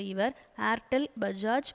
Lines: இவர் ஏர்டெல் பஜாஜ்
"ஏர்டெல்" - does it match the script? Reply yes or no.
yes